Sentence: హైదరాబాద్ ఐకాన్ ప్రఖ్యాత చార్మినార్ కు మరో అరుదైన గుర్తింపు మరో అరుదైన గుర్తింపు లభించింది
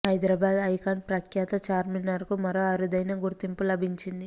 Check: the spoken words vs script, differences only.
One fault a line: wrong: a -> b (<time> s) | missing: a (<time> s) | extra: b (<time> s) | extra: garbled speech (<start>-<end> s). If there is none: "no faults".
missing: మరో అరుదైన గుర్తింపు (3.6 s)